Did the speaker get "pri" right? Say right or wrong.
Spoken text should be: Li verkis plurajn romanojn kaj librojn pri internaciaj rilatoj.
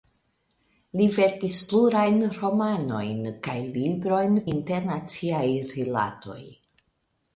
wrong